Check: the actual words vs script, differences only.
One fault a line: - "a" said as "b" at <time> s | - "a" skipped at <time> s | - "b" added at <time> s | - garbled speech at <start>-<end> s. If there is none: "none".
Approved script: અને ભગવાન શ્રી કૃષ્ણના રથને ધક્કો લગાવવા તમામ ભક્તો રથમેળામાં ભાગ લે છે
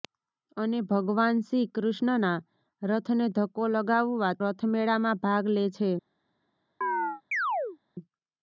- "તમામ ભક્તો" skipped at 4.3 s